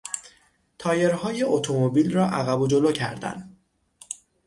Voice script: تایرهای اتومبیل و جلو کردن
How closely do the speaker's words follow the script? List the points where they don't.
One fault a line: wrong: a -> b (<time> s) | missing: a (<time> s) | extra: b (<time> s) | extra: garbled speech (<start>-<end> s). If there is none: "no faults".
extra: را عقب (2.1 s)